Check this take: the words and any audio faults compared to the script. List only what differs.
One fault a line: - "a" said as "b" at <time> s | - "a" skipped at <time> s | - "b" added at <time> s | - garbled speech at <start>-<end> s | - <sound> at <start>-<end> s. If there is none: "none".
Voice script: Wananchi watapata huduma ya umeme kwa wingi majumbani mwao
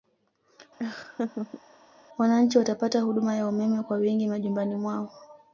- laugh at 0.8-1.6 s